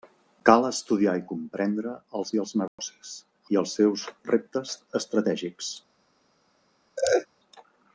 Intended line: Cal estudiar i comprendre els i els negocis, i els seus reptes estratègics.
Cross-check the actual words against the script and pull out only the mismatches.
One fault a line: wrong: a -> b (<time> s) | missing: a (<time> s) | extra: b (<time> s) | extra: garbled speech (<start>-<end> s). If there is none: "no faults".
no faults